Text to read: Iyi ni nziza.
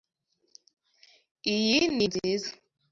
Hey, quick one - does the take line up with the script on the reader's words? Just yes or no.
yes